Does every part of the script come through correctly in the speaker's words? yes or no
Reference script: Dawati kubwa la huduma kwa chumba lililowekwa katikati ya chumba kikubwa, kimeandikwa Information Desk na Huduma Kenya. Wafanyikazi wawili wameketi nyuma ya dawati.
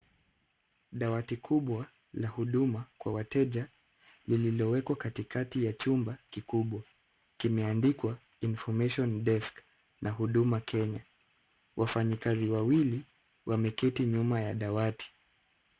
no